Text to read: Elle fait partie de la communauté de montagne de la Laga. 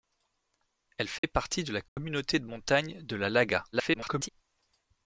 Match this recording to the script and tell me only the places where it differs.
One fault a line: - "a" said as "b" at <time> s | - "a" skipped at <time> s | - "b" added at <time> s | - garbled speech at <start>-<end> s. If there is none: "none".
- garbled speech at 3.7-4.3 s